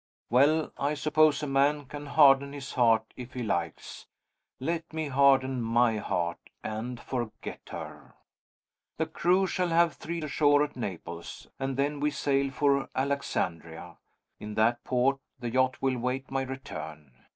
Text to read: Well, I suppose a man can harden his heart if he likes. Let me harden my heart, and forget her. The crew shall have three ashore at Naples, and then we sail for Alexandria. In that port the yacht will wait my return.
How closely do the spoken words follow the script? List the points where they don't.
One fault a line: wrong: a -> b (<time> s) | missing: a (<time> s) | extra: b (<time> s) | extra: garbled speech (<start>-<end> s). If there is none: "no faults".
no faults